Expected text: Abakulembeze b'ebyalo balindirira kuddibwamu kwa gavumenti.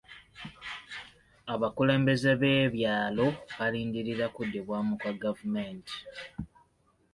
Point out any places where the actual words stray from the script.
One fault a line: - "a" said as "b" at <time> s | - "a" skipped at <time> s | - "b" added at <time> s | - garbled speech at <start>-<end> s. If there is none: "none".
none